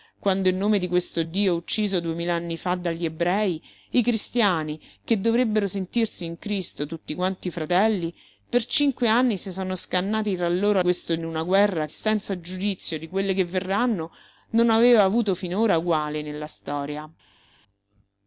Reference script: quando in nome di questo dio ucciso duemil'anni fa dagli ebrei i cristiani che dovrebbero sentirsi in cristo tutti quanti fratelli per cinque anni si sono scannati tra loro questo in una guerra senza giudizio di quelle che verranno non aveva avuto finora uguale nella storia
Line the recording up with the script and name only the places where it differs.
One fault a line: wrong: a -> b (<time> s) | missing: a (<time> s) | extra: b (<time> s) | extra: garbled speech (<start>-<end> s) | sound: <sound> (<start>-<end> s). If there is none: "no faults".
no faults